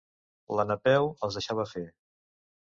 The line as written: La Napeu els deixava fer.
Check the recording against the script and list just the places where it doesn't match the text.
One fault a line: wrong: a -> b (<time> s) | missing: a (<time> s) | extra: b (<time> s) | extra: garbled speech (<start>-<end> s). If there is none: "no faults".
no faults